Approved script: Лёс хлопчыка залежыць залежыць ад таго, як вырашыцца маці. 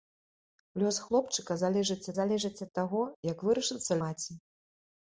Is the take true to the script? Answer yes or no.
yes